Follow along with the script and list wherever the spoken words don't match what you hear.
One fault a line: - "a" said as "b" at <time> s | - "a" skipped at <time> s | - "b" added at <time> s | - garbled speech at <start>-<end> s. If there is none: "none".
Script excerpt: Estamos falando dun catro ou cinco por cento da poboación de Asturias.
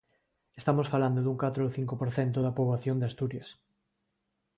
none